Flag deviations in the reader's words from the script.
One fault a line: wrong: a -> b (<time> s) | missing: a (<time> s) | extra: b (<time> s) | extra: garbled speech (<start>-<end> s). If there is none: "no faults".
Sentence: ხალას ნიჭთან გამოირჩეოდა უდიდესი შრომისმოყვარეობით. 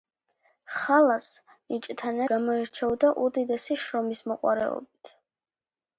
no faults